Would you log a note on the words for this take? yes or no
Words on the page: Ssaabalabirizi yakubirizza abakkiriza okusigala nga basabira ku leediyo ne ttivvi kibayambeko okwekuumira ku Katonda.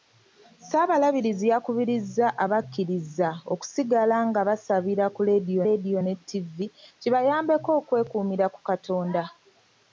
yes